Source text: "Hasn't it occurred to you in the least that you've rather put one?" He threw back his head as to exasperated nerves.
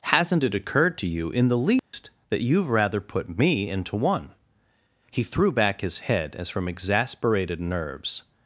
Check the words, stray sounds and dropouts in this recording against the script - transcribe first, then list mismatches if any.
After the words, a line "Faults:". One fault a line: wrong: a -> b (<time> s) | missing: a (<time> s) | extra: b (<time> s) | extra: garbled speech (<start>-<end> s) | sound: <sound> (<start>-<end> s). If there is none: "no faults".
"Hasn't it occurred to you in the least that you've rather put me into one?" He threw back his head as from exasperated nerves.
Faults:
sound: dropout (1.8-1.9 s)
extra: me into (3.4 s)
wrong: to -> from (6.5 s)